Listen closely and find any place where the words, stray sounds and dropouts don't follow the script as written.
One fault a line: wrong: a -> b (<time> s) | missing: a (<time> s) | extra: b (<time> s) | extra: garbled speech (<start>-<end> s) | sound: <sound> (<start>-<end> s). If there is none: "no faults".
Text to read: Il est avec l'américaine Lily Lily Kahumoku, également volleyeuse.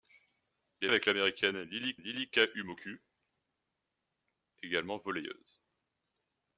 no faults